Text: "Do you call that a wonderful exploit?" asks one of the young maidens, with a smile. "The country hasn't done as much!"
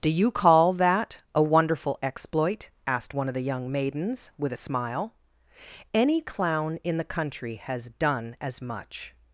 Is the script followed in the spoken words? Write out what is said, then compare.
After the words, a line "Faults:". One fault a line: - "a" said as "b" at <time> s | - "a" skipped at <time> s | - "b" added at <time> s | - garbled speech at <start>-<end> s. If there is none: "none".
"Do you call that a wonderful exploit?" asked one of the young maidens, with a smile. "Any clown in the country has done as much!"
Faults:
- "asks" said as "asked" at 2.9 s
- "Any clown in" added at 5.9 s
- "hasn't" said as "has" at 7.5 s